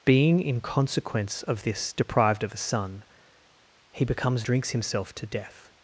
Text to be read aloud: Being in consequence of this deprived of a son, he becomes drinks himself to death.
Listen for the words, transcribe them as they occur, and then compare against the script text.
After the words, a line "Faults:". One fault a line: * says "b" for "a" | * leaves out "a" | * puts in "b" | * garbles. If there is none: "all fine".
Being in consequence of this deprived of a son, he becomes drinks himself to death.
Faults:
all fine